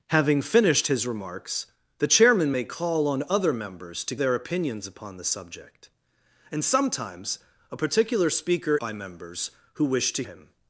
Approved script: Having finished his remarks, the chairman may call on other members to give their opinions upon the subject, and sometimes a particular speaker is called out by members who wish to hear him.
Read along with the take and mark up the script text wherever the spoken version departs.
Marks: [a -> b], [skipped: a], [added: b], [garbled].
Having finished his remarks, the chairman may call on other members to [skipped: give] their opinions upon the subject, and sometimes a particular speaker [skipped: is called out] by members who wish to [skipped: hear] him.